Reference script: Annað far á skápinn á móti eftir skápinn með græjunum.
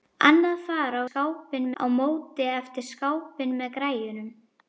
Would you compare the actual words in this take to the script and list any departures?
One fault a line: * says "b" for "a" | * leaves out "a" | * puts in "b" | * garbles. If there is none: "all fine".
all fine